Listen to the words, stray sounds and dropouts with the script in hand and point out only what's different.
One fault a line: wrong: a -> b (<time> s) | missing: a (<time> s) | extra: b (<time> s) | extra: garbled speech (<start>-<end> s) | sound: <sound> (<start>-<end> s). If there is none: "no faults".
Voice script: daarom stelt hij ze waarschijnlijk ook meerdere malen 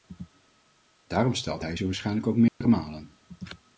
sound: dropout (2.5-2.6 s)